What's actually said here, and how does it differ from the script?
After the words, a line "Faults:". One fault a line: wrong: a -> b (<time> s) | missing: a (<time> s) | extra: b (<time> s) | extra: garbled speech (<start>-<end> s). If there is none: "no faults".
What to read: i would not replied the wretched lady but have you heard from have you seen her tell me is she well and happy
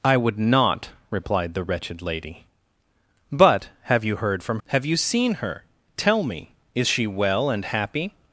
i would not replied the wretched lady but have you heard from have you seen her tell me is she well and happy
Faults:
no faults